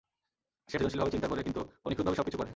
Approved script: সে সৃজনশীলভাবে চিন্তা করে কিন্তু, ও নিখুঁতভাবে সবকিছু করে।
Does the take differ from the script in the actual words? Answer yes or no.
no